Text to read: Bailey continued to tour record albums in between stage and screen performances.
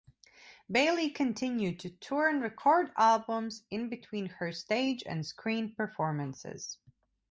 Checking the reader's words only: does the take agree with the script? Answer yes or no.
no